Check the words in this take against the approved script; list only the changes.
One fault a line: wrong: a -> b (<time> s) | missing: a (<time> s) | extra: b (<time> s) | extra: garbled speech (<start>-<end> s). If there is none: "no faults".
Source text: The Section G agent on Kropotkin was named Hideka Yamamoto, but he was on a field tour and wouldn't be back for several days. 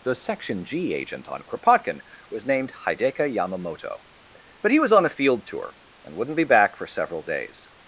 no faults